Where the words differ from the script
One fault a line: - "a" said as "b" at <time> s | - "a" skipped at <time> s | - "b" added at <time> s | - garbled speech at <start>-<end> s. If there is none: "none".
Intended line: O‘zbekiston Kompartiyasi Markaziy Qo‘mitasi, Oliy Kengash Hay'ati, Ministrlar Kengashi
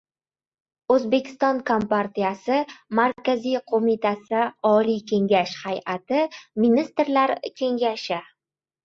none